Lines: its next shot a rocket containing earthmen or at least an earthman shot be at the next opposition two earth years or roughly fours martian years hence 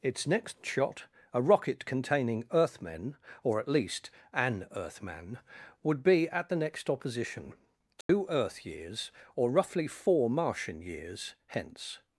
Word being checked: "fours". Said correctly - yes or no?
no